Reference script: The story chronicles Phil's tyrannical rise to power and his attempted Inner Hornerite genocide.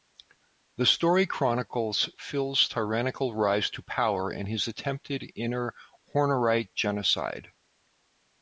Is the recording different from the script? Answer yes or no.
no